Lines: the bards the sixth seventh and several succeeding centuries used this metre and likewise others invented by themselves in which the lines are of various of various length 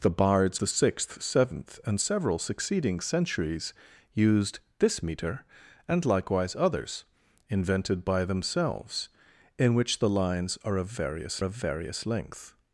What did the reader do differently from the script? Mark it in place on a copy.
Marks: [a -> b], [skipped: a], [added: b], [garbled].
the bards the sixth seventh and several succeeding centuries used this metre and likewise others invented by themselves in which the lines are of various of various length